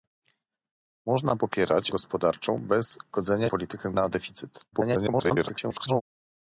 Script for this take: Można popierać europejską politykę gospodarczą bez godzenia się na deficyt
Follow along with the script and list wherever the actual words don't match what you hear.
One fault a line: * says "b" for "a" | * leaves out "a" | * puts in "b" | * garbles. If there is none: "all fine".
* leaves out "europejską politykę"
* says "politykę" for "się"
* garbles